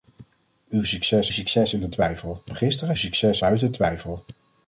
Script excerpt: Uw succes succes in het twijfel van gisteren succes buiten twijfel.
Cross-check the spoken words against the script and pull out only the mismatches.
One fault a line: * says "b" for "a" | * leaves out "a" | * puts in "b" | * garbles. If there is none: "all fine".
all fine